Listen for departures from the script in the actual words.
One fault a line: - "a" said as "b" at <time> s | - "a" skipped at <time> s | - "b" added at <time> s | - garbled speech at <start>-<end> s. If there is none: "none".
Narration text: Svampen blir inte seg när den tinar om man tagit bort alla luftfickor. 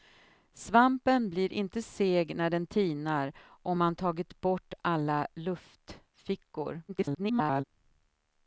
- garbled speech at 6.9-7.6 s